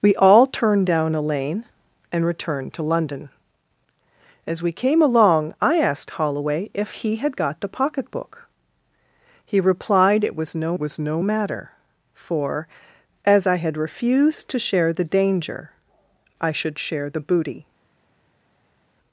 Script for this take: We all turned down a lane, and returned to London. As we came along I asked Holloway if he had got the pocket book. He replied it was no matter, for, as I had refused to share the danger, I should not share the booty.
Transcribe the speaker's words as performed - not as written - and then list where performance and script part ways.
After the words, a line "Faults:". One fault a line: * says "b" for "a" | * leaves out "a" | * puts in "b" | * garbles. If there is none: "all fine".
We all turned down a lane, and returned to London. As we came along I asked Holloway if he had got the pocket book. He replied it was no was no matter, for, as I had refused to share the danger, I should share the booty.
Faults:
* puts in "was no"
* leaves out "not"